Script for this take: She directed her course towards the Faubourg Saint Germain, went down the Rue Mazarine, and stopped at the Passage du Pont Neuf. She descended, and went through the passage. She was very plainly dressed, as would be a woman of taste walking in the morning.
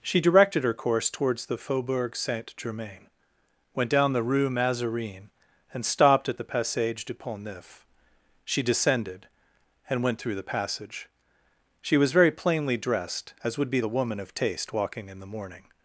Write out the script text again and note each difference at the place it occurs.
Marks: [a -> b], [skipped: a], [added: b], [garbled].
She directed her course towards the Faubourg Saint Germain, went down the Rue Mazarine, and stopped at the Passage du Pont Neuf. She descended, and went through the passage. She was very plainly dressed, as would be a woman of taste walking in the morning.